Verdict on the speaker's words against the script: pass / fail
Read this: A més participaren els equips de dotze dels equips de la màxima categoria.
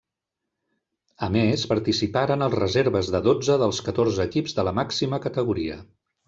fail